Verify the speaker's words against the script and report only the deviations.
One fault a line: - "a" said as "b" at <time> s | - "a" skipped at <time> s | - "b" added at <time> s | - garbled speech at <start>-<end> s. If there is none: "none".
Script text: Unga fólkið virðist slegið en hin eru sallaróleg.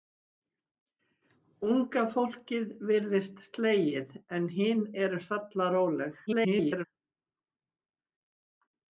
- garbled speech at 6.3-6.8 s